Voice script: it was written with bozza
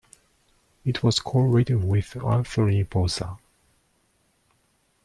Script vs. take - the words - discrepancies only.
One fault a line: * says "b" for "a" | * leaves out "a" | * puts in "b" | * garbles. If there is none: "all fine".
* puts in "co"
* puts in "anthony"